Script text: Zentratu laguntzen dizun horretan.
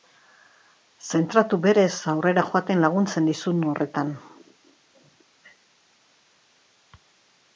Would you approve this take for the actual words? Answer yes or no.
no